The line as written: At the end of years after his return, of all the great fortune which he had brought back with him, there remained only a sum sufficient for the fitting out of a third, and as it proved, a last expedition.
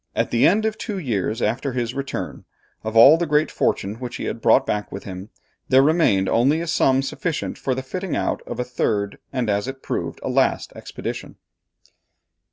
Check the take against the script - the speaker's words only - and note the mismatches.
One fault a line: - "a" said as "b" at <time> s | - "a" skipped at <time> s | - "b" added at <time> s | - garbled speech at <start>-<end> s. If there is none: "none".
- "two" added at 0.8 s